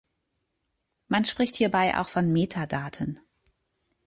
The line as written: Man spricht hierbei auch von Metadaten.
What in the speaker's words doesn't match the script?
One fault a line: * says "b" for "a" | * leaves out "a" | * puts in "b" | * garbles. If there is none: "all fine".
all fine